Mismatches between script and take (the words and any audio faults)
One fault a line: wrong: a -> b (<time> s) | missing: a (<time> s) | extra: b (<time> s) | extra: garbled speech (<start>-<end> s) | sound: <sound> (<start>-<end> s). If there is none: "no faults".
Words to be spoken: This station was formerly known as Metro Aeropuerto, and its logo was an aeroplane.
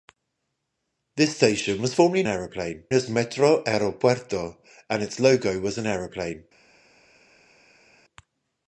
wrong: known -> aeroplane (2.3 s)